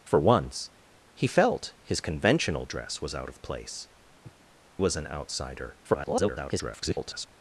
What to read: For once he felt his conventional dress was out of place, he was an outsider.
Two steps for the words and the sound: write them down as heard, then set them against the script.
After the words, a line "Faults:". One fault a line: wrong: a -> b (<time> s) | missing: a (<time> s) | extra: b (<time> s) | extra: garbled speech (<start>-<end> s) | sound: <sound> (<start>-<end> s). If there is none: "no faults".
For once he felt his conventional dress was out of place, was an outsider. [garbled]
Faults:
missing: he (3.9 s)
sound: sniff (4.2-4.4 s)
extra: garbled speech (5.8-7.3 s)